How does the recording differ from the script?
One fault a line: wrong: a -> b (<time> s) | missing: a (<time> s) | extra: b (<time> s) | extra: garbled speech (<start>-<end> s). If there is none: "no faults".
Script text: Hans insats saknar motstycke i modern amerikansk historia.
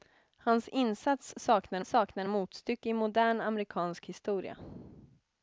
extra: saknar (1.8 s)